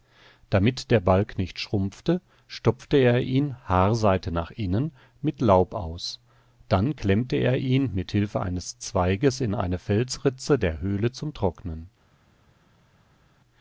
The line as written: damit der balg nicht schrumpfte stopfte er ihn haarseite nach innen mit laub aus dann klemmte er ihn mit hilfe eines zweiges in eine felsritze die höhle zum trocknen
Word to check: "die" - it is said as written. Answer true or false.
false